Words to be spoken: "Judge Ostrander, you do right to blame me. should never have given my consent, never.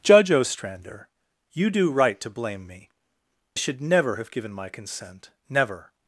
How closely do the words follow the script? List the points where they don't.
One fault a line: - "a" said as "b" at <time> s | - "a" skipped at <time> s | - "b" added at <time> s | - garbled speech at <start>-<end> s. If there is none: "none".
none